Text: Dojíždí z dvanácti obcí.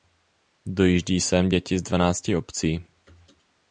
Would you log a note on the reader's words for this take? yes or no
yes